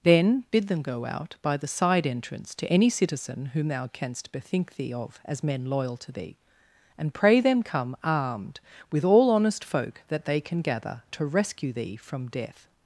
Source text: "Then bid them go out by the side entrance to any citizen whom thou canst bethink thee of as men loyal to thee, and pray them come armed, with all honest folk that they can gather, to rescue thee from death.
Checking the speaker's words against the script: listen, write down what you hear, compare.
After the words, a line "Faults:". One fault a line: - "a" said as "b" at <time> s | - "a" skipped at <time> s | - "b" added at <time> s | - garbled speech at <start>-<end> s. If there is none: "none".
"Then bid them go out by the side entrance to any citizen whom thou canst bethink thee of as men loyal to thee, and pray them come armed, with all honest folk that they can gather, to rescue thee from death.
Faults:
none